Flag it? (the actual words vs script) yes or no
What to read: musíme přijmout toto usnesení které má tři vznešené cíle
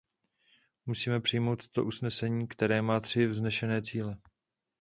no